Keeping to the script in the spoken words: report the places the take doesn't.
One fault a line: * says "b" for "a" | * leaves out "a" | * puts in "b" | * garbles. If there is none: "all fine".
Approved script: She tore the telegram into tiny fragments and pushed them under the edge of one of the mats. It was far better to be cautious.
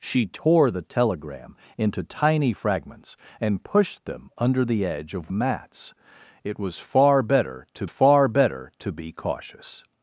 * says "mats It was far better to" for "one of the mats It was"